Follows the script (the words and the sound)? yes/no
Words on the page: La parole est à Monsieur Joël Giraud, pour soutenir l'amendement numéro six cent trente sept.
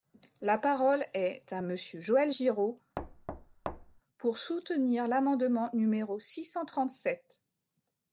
no